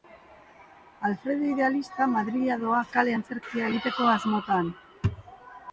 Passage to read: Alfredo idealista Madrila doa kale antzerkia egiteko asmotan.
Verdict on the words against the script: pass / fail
pass